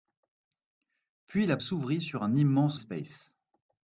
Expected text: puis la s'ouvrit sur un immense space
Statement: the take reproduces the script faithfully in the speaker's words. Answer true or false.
true